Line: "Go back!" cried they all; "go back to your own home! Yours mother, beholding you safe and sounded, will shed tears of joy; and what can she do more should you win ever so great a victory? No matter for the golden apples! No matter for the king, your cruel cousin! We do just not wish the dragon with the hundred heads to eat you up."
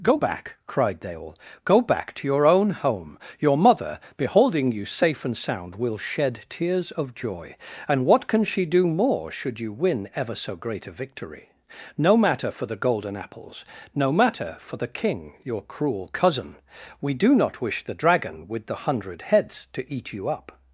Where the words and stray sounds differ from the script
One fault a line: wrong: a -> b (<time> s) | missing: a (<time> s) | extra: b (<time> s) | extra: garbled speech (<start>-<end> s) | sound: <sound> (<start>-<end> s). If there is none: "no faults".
wrong: Yours -> Your (3.4 s)
wrong: sounded -> sound (5.4 s)
missing: just (17.4 s)